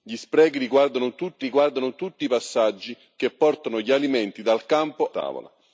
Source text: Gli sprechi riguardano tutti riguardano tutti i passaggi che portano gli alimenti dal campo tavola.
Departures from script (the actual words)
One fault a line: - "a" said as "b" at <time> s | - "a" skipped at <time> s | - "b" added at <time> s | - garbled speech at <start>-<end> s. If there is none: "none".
none